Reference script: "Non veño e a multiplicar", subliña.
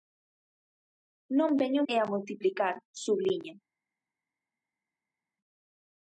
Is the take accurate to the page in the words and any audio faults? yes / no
yes